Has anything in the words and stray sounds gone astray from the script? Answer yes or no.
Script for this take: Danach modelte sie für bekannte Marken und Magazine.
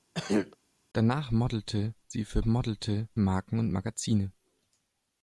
yes